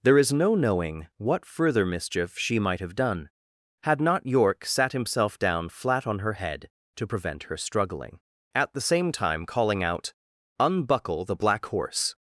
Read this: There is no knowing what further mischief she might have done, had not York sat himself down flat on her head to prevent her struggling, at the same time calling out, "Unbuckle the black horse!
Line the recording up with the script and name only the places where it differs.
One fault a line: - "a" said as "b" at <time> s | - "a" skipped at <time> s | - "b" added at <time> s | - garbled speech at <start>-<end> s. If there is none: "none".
none